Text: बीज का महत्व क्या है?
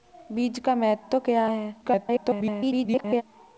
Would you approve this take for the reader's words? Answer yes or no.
no